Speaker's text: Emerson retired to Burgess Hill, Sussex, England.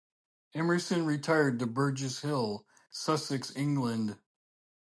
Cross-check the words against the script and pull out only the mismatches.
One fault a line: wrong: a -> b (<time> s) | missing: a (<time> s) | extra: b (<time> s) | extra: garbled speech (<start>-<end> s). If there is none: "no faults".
no faults